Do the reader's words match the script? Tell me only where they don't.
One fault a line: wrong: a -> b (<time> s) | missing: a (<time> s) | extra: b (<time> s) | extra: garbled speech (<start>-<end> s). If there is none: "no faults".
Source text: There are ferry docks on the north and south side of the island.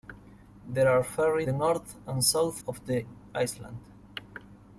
missing: docks on (1.4 s)
missing: side (2.6 s)